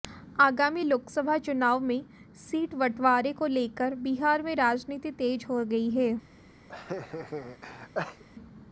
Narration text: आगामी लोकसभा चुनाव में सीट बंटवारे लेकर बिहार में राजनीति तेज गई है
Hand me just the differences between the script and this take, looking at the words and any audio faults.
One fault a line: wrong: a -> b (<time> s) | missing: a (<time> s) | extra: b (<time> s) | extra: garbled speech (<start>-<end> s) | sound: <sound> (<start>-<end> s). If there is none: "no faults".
extra: को (3.3 s)
extra: हो (5.5 s)
sound: laugh (6.7-8.2 s)